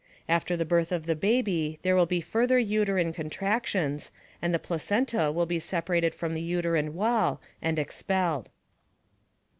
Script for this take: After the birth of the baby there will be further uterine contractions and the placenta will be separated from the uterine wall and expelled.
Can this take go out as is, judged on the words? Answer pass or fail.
pass